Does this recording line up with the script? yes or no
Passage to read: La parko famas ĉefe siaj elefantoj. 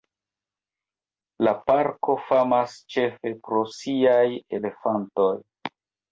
no